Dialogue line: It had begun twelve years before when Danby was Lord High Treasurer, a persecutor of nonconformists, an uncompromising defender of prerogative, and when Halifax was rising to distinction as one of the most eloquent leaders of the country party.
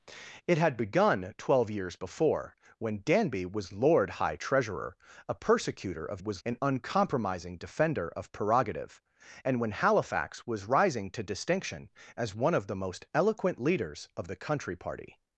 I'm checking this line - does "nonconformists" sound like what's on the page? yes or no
no